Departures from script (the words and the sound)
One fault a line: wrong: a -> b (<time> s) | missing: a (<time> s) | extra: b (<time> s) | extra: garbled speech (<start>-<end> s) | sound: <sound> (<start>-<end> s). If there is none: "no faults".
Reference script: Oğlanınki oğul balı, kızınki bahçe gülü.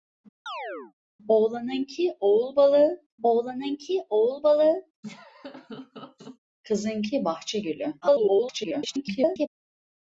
sound: chirp (0.5-0.9 s)
extra: oğlanınki oğul balı (3.2 s)
sound: laugh (5.0-6.4 s)
extra: garbled speech (8.0-9.5 s)